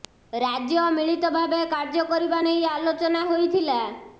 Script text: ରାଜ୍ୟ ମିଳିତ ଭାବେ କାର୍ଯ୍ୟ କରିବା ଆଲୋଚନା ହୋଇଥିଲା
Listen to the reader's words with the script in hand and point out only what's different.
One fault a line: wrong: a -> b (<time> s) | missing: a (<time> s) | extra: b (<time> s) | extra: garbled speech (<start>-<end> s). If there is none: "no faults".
extra: ନେଇ (2.5 s)